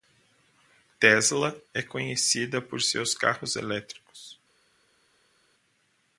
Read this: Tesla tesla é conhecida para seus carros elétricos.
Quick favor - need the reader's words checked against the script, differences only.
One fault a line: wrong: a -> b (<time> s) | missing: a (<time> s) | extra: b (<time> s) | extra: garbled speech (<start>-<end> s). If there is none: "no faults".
missing: tesla (1.6 s)
wrong: para -> por (2.6 s)